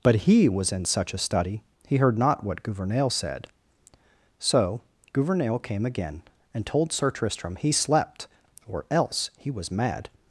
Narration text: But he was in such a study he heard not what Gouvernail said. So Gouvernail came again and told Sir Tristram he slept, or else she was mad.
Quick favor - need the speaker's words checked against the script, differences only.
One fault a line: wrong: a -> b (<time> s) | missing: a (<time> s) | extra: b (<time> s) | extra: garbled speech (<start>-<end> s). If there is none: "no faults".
wrong: she -> he (9.4 s)